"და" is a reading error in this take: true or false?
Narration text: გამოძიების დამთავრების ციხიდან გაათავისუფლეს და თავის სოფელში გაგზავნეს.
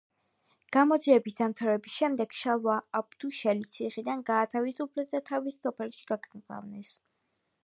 false